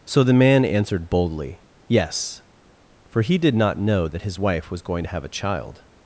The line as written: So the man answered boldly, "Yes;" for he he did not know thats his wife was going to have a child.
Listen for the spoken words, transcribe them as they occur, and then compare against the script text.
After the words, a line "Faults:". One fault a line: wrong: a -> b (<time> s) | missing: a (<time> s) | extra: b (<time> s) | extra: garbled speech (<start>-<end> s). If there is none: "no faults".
So the man answered boldly, "Yes;" for he did not know that his wife was going to have a child.
Faults:
missing: he (3.4 s)
wrong: thats -> that (4.1 s)